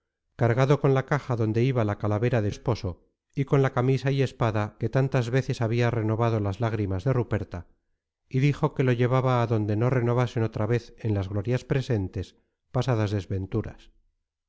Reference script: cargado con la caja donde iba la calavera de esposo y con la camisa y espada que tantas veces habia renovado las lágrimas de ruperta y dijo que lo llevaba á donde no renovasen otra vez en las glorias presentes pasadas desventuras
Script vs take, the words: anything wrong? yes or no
no